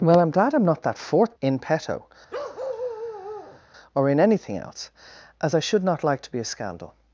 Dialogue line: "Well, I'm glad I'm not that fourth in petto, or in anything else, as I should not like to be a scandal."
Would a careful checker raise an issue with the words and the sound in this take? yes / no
yes